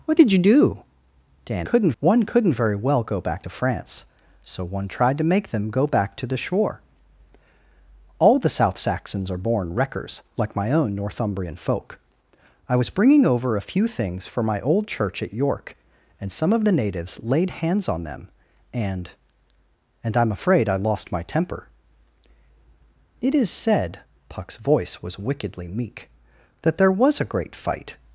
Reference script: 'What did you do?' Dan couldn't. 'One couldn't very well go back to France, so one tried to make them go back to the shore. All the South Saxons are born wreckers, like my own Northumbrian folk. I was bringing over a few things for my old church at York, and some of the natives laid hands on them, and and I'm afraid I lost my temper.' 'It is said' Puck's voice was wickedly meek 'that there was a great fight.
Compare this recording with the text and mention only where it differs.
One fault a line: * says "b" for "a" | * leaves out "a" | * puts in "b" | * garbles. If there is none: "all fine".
all fine